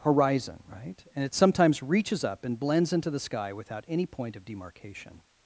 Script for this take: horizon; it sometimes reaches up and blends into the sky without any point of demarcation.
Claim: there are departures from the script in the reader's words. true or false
true